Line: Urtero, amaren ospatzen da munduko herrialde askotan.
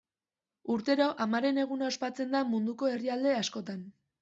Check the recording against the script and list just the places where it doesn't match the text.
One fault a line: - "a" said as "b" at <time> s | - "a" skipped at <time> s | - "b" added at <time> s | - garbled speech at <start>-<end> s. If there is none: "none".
- "eguna" added at 1.6 s